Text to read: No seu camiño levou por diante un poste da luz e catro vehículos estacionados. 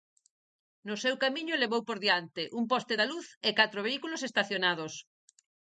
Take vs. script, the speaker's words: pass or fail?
pass